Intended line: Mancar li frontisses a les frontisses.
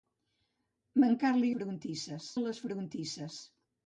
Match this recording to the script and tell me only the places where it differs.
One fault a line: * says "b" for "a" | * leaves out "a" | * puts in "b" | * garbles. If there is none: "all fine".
all fine